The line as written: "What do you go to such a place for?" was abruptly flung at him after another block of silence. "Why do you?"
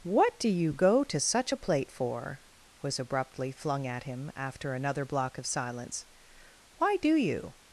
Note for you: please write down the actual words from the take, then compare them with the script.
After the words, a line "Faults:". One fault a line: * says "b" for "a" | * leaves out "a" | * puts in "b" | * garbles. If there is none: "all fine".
"What do you go to such a plate for?" was abruptly flung at him after another block of silence. "Why do you?"
Faults:
* says "plate" for "place"